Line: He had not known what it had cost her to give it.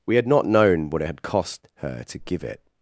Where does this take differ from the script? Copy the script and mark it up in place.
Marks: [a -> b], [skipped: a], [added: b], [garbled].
[He -> We] had not known what it had cost her to give it.